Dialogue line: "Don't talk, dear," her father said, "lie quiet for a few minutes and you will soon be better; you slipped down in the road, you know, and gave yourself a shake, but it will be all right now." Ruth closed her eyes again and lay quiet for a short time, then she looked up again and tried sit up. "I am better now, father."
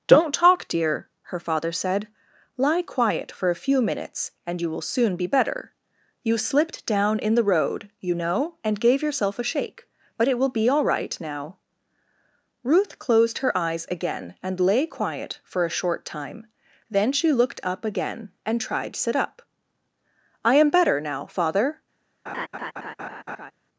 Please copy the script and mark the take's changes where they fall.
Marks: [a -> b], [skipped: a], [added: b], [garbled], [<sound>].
"Don't talk, dear," her father said, "lie quiet for a few minutes and you will soon be better; you slipped down in the road, you know, and gave yourself a shake, but it will be all right now." Ruth closed her eyes again and lay quiet for a short time, then she looked up again and tried sit up. "I am better now, father." [laugh]